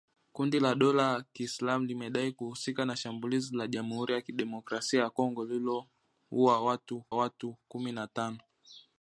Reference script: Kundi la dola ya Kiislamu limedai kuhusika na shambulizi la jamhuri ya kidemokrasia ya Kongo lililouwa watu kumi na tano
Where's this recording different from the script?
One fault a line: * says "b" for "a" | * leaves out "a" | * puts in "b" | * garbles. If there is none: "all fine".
* puts in "watu"